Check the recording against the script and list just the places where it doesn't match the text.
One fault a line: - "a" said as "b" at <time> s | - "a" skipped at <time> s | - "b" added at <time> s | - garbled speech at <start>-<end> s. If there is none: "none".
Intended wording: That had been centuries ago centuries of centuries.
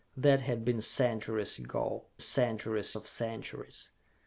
none